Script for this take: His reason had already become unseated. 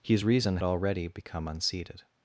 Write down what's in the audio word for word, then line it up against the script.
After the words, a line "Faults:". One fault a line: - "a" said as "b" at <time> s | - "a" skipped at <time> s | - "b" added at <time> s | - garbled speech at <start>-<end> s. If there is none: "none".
His reason already become unseated.
Faults:
- "had" skipped at 0.6 s